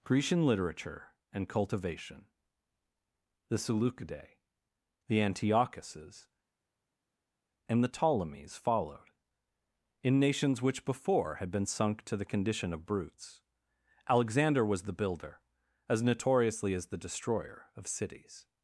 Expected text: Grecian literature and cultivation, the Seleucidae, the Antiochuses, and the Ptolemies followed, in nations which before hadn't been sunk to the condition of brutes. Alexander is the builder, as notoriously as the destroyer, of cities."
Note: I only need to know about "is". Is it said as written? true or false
false